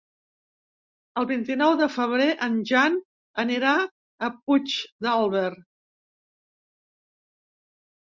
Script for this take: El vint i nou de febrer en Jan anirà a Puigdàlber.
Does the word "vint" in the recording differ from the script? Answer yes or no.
no